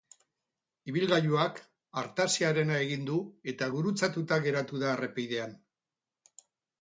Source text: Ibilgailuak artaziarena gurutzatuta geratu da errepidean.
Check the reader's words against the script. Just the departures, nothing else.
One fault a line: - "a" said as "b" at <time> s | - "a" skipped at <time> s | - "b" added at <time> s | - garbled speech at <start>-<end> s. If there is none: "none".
- "egin du eta" added at 2.9 s